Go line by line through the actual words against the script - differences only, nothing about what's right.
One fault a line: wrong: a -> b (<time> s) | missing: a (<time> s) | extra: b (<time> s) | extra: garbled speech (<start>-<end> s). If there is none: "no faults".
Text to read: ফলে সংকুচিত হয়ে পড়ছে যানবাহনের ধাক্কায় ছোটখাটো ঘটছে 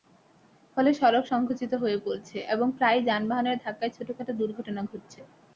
extra: সড়ক (0.9 s)
extra: এবং প্রায়ই (2.5 s)
extra: দুর্ঘটনা (4.4 s)